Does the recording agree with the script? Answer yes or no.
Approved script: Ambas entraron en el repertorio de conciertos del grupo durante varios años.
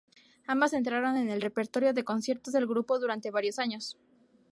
yes